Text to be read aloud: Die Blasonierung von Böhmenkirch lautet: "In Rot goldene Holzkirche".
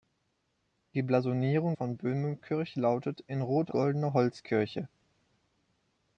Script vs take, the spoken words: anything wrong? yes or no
no